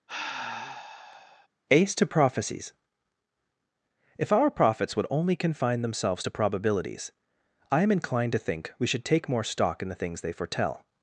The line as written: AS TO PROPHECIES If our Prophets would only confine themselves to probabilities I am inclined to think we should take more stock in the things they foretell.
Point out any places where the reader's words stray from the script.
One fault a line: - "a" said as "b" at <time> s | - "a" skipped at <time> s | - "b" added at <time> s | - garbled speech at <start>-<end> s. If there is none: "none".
- "AS" said as "Ace" at 1.7 s